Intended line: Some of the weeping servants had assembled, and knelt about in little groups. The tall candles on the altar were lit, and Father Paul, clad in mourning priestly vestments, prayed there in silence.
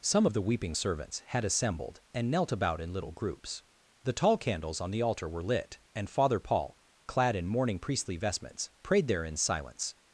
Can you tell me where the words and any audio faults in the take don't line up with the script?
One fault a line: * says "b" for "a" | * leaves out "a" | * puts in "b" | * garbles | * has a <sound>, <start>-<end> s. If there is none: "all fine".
all fine